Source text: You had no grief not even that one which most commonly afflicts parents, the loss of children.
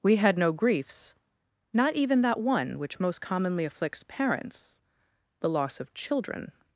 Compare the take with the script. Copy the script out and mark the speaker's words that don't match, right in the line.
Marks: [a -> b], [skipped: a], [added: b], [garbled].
[You -> We] had no [grief -> griefs] not even that one which most commonly afflicts parents, the loss of children.